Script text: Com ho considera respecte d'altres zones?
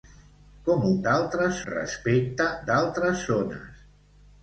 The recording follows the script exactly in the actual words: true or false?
false